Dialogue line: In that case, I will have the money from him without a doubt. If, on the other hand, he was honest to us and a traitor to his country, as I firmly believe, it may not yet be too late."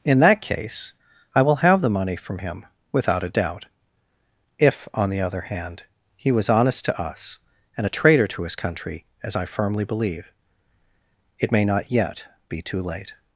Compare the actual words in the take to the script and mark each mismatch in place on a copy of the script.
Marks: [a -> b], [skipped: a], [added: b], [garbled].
In that case, I will have the money from him without a doubt. If, on the other hand, he was honest to us and a traitor to his country, as I firmly believe, it may not yet be too late."